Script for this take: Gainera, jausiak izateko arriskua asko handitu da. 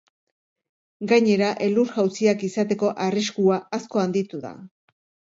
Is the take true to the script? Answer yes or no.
no